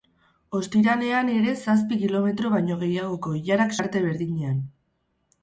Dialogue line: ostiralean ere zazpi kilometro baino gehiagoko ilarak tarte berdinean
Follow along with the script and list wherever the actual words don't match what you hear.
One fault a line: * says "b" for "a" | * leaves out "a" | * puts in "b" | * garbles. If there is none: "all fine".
all fine